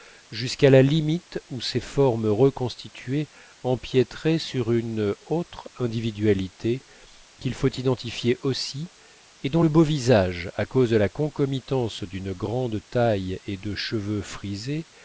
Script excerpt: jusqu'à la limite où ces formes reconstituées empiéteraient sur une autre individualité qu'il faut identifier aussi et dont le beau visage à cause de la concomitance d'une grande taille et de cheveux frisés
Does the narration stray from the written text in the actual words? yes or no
no